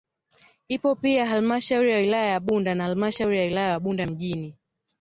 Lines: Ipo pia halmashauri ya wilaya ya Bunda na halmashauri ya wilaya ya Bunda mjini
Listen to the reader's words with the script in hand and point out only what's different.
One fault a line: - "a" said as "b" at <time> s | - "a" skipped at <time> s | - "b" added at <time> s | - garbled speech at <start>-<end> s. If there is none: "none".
none